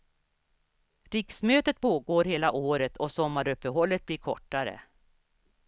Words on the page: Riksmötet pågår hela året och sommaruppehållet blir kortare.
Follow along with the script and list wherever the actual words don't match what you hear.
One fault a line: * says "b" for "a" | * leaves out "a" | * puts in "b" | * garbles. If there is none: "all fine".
all fine